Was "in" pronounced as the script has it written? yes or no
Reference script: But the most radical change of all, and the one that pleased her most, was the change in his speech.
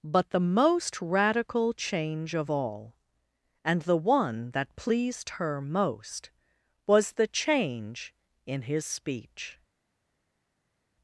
yes